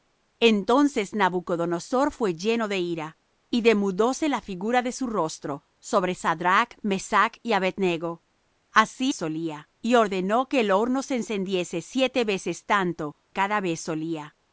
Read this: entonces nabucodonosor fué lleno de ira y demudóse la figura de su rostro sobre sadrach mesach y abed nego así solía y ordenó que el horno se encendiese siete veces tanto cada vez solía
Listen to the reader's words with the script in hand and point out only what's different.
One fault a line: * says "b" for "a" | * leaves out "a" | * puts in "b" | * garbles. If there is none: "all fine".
all fine